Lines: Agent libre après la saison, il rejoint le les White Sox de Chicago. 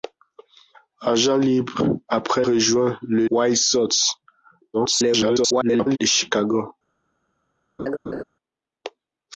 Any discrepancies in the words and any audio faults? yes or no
yes